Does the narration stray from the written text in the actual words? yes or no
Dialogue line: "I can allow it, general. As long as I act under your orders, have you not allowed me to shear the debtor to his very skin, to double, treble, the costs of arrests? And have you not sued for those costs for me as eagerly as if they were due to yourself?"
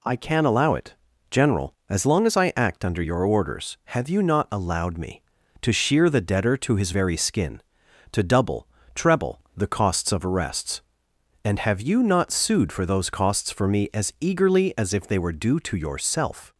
no